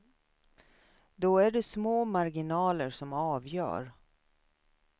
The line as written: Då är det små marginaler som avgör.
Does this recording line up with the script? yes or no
yes